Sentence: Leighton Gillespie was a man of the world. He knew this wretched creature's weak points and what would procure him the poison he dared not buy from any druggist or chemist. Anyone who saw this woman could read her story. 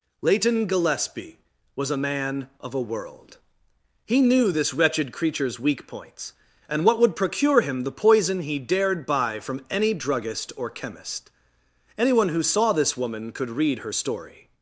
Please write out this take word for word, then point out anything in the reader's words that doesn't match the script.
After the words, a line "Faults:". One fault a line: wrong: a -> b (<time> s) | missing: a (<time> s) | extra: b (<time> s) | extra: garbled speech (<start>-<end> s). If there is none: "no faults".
Leighton Gillespie was a man of a world. He knew this wretched creature's weak points and what would procure him the poison he dared buy from any druggist or chemist. Anyone who saw this woman could read her story.
Faults:
wrong: the -> a (2.7 s)
missing: not (9.0 s)